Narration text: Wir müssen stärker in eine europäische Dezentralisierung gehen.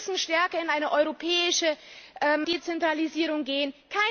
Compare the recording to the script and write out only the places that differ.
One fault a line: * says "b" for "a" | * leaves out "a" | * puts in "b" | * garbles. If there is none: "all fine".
all fine